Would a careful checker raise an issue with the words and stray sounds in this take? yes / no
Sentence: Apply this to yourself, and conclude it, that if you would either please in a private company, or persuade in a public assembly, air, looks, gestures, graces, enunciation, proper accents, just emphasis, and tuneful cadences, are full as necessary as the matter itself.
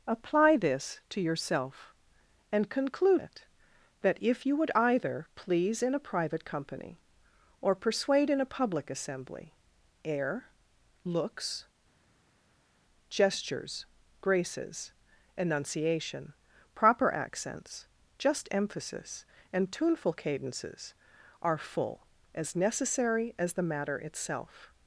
no